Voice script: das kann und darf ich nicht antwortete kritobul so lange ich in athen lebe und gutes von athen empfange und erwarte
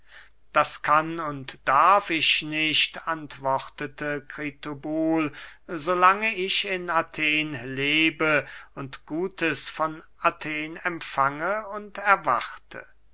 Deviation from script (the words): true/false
false